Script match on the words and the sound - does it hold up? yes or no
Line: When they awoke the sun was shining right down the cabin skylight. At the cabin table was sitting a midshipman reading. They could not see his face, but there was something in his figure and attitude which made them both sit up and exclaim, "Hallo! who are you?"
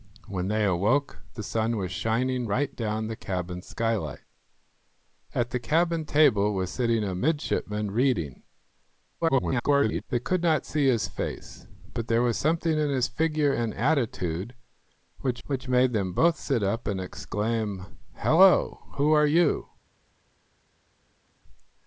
no